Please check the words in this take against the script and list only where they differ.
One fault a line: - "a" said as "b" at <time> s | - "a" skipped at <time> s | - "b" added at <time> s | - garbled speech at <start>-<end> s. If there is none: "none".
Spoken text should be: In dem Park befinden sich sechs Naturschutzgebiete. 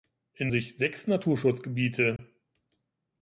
- "dem Park befinden" skipped at 0.5 s